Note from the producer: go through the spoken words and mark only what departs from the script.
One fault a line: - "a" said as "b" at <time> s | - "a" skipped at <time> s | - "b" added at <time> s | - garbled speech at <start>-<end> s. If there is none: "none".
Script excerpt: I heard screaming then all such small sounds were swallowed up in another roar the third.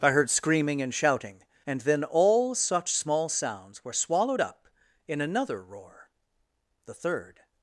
- "and shouting and" added at 0.8 s